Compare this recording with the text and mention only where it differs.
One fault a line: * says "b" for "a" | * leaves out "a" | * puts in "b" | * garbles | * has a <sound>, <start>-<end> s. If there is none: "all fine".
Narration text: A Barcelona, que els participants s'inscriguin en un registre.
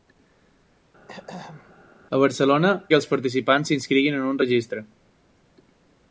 * has a throat clearing, 1.1-1.7 s